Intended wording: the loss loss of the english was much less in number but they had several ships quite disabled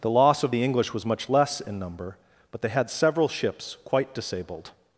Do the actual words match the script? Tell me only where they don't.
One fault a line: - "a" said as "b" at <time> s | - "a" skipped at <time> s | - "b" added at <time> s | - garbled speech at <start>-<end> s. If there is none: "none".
- "loss" skipped at 0.4 s